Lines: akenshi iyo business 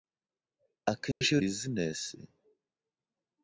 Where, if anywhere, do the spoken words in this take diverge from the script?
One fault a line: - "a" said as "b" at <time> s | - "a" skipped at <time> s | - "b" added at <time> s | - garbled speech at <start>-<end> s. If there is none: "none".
none